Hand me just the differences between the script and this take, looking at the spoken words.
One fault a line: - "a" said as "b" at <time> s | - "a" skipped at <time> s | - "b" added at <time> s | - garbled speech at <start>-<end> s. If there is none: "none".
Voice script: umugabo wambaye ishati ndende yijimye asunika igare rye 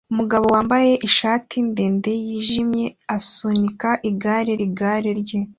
- "igare" added at 4.6 s